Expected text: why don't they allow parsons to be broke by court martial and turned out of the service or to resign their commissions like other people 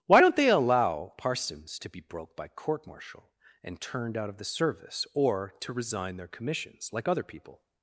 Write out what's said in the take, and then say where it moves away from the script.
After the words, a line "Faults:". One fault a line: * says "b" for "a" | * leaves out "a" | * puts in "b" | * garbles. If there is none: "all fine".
why don't they allow parsons to be broke by court martial and turned out of the service or to resign their commissions like other people
Faults:
all fine